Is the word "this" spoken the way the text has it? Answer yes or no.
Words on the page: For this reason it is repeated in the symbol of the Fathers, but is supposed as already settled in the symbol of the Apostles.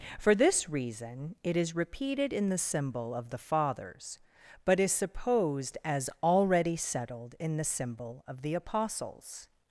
yes